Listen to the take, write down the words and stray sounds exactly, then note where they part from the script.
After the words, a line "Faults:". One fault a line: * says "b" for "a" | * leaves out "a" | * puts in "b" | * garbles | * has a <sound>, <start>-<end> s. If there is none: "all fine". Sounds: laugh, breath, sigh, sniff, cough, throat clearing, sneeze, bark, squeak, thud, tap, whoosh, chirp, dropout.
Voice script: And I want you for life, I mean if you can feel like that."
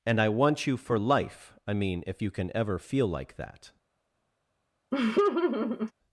And I want you for life, I mean if you can ever feel like that."
Faults:
* puts in "ever"
* has a laugh, 4.9-5.9 s